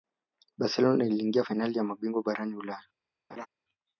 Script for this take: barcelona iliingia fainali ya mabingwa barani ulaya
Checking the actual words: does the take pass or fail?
pass